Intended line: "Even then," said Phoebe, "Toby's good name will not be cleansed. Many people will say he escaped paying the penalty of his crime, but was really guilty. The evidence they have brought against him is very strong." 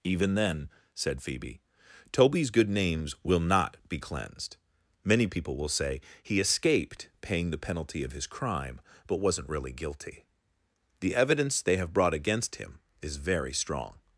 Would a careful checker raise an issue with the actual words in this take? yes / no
yes